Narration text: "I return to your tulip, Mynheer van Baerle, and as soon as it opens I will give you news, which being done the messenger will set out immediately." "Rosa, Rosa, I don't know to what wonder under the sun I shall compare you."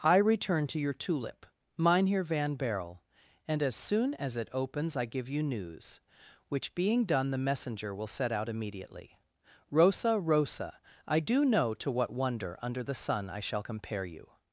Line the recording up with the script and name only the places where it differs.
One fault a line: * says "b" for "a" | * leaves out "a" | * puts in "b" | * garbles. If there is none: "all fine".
* leaves out "will"
* says "do" for "don't"